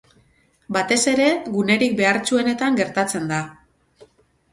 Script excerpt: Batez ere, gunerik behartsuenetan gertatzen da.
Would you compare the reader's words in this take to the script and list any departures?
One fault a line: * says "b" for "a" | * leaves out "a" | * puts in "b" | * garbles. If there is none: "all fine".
all fine